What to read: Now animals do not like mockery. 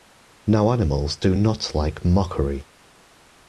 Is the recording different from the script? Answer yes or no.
no